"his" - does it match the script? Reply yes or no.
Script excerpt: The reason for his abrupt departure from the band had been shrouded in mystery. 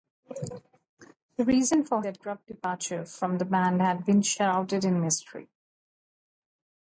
no